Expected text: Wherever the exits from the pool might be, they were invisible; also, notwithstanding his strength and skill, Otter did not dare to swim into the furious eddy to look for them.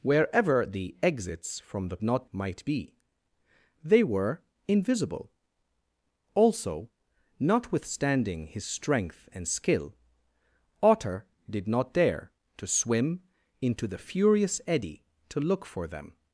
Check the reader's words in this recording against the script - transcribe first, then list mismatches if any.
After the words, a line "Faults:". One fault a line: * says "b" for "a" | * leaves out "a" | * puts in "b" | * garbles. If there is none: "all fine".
Wherever the exits from the not might be, they were invisible; also, notwithstanding his strength and skill, Otter did not dare to swim into the furious eddy to look for them.
Faults:
* says "not" for "pool"